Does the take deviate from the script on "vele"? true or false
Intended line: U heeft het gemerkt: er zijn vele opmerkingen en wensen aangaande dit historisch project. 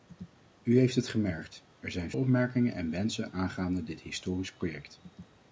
true